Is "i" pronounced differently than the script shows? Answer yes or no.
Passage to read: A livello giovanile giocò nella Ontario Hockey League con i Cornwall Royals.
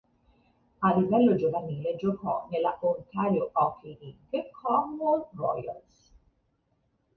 yes